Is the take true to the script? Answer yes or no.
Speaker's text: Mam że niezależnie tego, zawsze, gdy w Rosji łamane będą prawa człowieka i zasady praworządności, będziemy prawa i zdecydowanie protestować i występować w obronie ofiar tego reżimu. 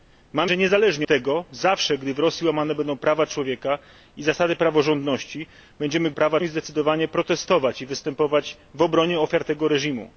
yes